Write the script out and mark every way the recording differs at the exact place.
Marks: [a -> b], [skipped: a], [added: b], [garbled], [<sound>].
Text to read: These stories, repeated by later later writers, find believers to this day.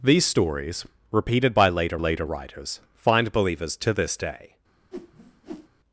These stories, repeated by later later writers, find believers to this day. [whoosh]